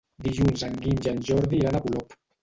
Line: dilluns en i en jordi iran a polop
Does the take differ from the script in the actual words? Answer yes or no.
yes